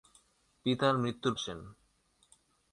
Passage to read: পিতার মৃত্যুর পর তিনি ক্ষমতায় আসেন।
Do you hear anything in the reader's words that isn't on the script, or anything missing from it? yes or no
yes